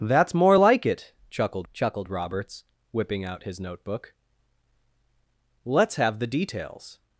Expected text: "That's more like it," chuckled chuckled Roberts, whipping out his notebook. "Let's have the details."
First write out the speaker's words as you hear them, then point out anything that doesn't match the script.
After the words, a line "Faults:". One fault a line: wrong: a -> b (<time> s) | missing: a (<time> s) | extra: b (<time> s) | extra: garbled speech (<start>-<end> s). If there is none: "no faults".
"That's more like it," chuckled chuckled Roberts, whipping out his notebook. "Let's have the details."
Faults:
no faults